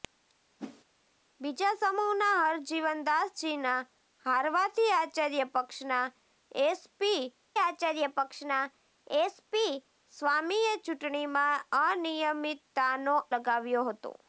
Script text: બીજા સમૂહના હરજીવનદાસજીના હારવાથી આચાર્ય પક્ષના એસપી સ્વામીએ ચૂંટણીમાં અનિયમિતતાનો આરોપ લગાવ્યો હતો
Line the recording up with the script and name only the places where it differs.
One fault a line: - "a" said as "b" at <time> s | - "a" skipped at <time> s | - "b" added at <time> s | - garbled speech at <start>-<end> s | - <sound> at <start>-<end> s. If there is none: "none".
- whoosh at 0.6-0.8 s
- "આચાર્ય પક્ષના એસપી" added at 7.6 s
- "આરોપ" skipped at 13.2 s